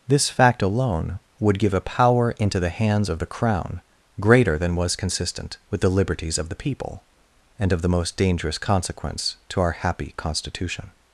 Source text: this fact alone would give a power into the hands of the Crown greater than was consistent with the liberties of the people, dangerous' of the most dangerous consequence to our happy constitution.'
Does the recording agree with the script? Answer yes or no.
no